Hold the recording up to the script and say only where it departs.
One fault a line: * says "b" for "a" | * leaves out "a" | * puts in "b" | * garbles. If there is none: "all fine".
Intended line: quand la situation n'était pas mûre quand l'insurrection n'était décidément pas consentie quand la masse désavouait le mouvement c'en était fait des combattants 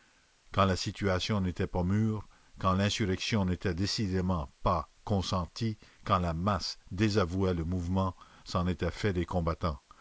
all fine